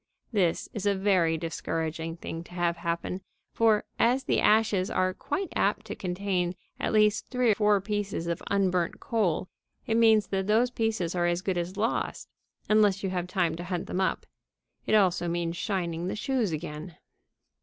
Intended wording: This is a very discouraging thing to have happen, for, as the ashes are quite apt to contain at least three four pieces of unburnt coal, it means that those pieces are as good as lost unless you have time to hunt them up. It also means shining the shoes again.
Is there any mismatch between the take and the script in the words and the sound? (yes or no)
no